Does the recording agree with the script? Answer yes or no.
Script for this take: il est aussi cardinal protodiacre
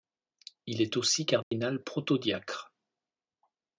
yes